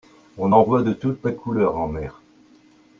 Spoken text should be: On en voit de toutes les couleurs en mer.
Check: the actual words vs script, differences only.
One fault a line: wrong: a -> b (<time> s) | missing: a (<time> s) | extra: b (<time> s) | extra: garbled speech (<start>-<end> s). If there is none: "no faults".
no faults